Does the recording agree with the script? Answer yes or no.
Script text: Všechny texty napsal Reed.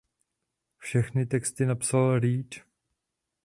yes